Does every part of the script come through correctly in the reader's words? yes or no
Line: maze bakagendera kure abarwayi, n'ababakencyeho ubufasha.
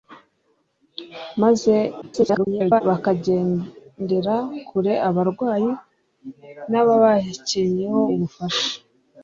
no